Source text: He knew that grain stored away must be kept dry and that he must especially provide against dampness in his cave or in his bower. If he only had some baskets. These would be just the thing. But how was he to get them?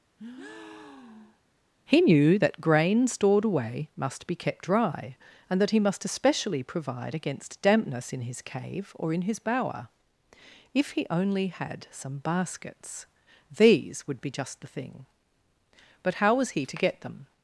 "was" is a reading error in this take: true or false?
false